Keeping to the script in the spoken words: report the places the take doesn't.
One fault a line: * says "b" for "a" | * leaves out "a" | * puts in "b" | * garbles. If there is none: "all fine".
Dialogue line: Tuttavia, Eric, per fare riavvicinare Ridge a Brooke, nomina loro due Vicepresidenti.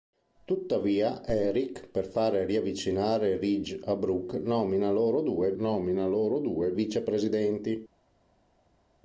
* puts in "nomina loro due"